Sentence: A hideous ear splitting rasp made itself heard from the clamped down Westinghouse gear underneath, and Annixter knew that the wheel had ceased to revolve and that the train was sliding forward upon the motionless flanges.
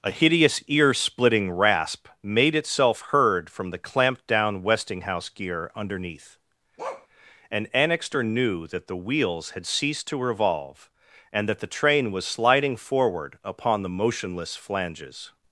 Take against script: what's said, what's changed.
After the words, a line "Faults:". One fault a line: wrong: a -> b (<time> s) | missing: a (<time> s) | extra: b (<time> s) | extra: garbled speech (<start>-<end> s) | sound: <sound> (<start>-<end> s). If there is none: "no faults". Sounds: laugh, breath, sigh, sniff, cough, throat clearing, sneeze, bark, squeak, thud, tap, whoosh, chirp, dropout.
A hideous ear splitting rasp made itself heard from the clamped down Westinghouse gear underneath, and Annixter knew that the wheels had ceased to revolve and that the train was sliding forward upon the motionless flanges.
Faults:
sound: bark (6.8-7.1 s)
wrong: wheel -> wheels (9.0 s)